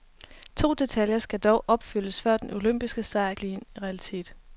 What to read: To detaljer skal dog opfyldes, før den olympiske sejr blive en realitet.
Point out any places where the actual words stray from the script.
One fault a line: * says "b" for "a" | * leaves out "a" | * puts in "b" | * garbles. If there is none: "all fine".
all fine